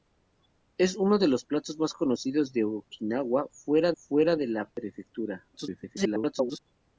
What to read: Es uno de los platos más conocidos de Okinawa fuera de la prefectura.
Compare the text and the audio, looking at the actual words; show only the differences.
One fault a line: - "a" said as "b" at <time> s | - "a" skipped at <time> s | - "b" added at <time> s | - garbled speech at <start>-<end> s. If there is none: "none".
- "fuera" added at 3.9 s
- garbled speech at 5.5-6.6 s